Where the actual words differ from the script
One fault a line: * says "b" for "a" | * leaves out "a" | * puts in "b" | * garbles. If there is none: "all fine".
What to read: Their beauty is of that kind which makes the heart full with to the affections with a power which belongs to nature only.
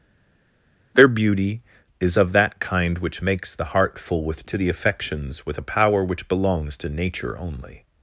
all fine